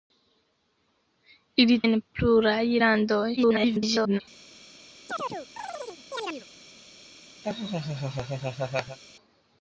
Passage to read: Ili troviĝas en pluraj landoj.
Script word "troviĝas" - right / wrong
wrong